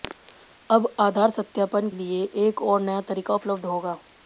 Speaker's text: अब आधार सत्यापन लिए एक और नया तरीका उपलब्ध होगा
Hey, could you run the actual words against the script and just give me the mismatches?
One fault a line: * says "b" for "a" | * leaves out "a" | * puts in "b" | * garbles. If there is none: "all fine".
all fine